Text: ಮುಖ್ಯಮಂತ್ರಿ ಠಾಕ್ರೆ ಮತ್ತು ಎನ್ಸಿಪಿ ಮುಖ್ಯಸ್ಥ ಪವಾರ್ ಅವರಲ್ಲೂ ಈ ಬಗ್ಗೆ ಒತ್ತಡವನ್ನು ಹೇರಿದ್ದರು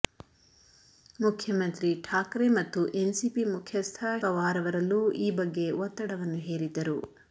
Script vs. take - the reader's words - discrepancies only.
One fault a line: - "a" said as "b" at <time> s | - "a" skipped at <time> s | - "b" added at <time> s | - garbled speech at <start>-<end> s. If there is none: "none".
none